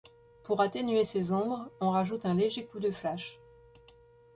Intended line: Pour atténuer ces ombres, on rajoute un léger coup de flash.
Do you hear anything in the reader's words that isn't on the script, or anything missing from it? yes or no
no